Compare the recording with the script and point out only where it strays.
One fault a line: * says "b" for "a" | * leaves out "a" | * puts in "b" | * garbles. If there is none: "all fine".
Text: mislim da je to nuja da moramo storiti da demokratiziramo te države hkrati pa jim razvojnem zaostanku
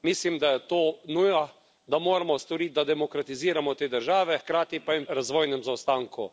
all fine